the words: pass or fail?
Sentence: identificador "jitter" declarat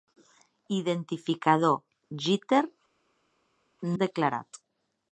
pass